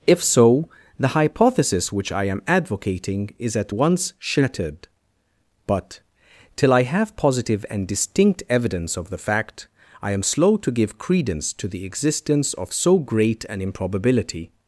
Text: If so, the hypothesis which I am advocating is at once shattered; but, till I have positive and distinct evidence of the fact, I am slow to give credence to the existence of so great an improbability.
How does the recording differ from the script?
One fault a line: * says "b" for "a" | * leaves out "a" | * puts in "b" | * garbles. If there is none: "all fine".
all fine